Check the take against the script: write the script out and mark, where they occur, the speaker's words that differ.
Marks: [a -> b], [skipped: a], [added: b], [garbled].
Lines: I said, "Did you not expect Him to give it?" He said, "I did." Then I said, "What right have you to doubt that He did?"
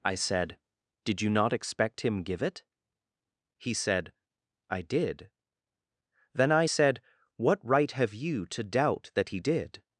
I said, "Did you not expect Him [skipped: to] give it?" He said, "I did." Then I said, "What right have you to doubt that He did?"